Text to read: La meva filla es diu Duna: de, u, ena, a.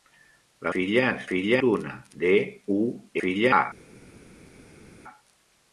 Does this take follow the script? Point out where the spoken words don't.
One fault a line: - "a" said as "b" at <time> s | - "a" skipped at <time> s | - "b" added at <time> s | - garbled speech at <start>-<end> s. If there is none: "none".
- "meva" skipped at 0.7 s
- "diu" said as "filla" at 1.3 s
- "ena" said as "filla" at 3.2 s